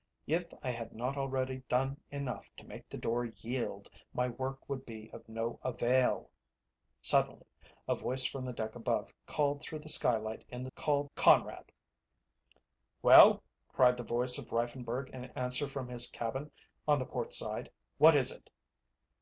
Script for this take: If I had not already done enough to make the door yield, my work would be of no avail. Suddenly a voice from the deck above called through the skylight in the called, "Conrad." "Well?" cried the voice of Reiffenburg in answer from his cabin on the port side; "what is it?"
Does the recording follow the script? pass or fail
pass